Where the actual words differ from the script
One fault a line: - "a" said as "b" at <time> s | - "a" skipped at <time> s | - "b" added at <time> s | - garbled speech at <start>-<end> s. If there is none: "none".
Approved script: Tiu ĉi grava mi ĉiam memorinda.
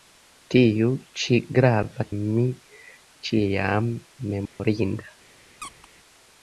none